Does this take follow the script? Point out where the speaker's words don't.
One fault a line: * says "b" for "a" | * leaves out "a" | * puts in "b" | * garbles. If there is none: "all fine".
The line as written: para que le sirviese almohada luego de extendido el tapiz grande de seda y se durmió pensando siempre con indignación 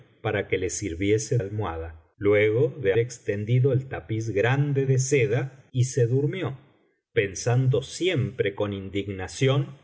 all fine